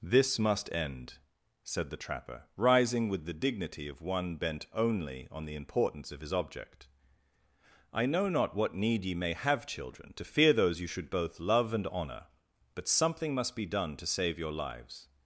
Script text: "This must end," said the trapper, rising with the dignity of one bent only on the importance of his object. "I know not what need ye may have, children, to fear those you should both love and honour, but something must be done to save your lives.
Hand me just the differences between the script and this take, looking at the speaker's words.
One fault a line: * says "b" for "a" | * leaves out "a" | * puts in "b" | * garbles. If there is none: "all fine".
all fine